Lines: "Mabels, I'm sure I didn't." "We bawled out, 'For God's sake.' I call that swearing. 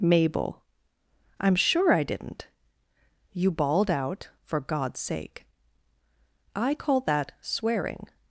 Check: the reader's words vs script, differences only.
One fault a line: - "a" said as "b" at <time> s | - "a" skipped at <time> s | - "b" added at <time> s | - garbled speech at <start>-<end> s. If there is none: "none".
- "Mabels" said as "Mabel" at 0.0 s
- "We" said as "You" at 3.3 s